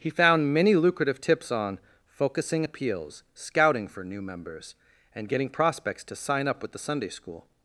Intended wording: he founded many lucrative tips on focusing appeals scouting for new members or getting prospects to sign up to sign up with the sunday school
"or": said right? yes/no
no